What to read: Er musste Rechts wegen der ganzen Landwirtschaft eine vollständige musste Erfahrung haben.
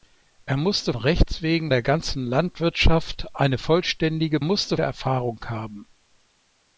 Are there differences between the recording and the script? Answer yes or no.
no